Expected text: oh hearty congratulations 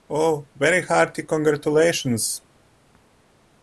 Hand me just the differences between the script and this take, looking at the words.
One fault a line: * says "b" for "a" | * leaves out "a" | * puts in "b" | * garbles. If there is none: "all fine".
* puts in "very"